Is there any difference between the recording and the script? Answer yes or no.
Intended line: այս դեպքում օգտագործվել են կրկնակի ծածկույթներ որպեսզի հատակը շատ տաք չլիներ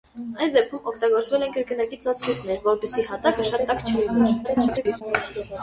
yes